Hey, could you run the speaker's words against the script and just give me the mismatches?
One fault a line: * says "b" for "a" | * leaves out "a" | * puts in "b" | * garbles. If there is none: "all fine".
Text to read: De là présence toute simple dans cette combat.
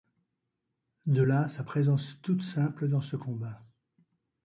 * puts in "sa"
* says "ce" for "cette"